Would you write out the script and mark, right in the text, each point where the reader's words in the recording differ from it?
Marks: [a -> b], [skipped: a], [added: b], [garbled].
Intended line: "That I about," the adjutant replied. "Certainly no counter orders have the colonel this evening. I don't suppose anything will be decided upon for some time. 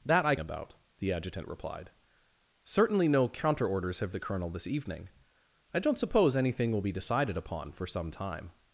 "That I about," the adjutant replied. "Certainly no counter orders have the colonel this evening. I don't suppose anything will be decided upon for some time.